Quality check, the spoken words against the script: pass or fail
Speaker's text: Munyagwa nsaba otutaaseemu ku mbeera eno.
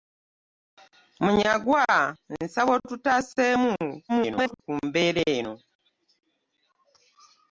fail